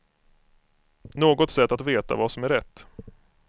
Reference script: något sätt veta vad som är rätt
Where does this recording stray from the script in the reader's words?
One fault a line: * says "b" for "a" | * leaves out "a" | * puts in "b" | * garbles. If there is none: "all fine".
* puts in "att"